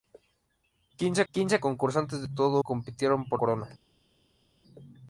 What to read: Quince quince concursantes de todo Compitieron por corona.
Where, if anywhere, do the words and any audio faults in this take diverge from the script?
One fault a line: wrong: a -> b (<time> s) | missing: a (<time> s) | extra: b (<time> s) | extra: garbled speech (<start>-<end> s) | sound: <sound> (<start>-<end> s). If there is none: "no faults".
no faults